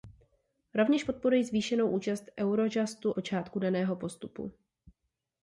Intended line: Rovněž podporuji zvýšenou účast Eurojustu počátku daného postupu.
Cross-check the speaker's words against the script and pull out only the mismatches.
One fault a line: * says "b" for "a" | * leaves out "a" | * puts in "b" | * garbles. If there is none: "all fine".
all fine